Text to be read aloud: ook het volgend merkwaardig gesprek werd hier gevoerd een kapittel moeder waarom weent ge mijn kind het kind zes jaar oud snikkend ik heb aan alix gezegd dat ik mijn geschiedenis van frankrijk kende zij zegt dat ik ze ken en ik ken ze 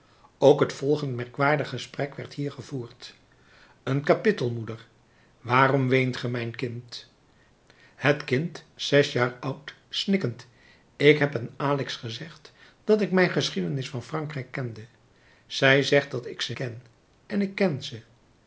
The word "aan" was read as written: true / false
true